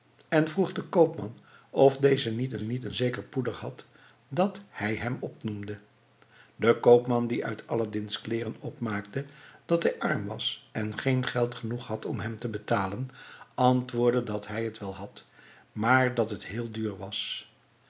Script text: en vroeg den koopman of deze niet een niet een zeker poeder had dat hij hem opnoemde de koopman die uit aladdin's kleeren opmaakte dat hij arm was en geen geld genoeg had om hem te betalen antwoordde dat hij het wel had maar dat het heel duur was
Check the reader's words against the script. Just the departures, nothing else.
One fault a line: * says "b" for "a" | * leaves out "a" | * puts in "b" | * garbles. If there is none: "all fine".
all fine